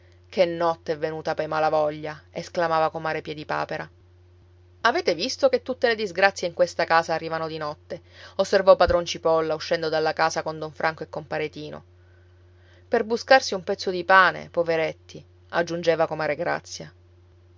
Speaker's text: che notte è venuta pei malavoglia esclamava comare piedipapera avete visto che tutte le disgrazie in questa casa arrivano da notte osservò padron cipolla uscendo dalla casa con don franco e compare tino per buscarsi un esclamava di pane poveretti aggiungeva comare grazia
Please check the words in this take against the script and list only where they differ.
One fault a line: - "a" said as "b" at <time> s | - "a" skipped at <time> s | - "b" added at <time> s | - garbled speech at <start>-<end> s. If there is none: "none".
- "da" said as "di" at 7.5 s
- "esclamava" said as "pezzo" at 13.6 s